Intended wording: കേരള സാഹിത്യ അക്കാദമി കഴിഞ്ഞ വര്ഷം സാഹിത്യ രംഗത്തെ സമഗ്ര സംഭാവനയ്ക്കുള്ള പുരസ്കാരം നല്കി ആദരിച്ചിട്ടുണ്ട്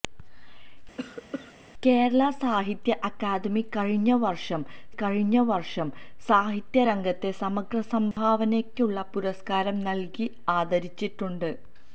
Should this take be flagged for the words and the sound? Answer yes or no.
yes